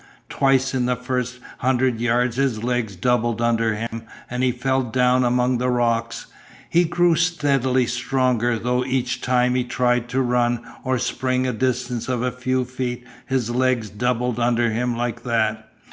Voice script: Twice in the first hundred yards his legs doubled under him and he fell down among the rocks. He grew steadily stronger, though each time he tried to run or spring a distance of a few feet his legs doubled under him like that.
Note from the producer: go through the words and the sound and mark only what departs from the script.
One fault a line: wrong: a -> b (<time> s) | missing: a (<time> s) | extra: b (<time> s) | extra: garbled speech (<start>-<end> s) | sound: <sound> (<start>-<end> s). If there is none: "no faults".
sound: dropout (3.9-3.9 s)